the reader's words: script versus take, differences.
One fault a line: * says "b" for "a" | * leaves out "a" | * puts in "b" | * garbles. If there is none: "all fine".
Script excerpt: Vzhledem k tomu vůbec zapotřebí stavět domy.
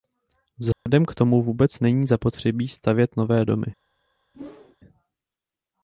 * puts in "není"
* puts in "nové"